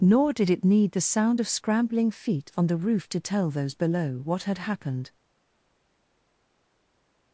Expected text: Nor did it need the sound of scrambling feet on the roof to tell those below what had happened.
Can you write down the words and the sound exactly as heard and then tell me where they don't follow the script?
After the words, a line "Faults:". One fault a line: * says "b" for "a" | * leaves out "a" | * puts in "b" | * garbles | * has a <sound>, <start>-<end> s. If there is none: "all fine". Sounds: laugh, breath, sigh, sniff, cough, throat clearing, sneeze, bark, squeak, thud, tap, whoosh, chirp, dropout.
Nor did it need the sound of scrambling feet on the roof to tell those below what had happened.
Faults:
all fine